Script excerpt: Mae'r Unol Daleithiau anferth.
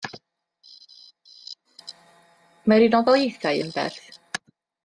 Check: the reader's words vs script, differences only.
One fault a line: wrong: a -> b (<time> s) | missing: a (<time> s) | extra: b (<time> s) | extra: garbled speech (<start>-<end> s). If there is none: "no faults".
no faults